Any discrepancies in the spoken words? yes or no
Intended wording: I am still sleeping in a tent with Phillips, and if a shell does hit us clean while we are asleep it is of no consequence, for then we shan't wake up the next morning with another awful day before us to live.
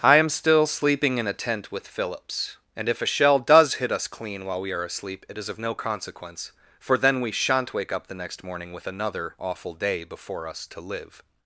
no